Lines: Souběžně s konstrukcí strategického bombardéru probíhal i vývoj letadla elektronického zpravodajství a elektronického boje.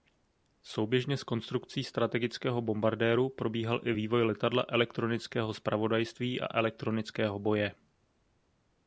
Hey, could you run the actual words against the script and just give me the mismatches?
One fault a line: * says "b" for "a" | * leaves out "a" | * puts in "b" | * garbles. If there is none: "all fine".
all fine